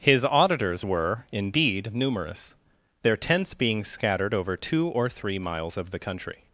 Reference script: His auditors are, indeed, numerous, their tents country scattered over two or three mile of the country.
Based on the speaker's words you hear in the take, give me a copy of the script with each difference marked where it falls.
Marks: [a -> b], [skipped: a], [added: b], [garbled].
His auditors [are, -> were] indeed, numerous, their tents [country -> being] scattered over two or three [mile -> miles] of the country.